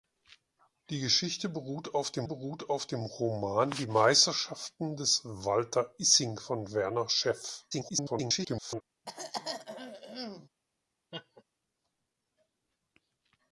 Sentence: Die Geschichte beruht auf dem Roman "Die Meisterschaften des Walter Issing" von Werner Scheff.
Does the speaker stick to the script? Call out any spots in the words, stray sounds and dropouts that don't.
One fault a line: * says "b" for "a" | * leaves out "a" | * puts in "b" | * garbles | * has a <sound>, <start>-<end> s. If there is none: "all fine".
* puts in "beruht auf dem"
* garbles
* has a throat clearing, 9.1-10.5 s
* has a laugh, 11.1-11.4 s